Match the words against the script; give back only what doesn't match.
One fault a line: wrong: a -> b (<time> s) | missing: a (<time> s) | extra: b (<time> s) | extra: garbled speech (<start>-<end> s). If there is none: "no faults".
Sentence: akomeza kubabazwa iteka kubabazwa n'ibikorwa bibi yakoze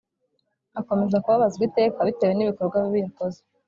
wrong: kubabazwa -> bitewe (2.1 s)